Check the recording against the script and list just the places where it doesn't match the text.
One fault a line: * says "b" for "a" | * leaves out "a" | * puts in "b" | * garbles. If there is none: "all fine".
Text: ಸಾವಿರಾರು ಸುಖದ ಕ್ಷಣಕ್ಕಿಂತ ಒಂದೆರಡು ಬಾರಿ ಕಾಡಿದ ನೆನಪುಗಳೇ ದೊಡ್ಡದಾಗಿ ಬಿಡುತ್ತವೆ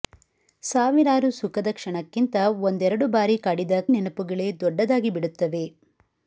all fine